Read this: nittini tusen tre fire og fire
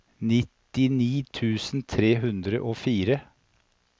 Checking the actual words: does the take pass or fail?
fail